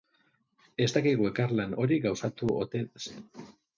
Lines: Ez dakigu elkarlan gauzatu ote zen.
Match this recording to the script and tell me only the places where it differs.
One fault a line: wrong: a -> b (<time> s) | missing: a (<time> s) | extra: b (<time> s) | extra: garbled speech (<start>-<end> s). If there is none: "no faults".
extra: hori (1.8 s)